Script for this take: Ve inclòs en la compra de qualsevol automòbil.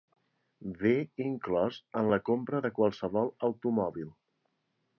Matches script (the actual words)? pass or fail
pass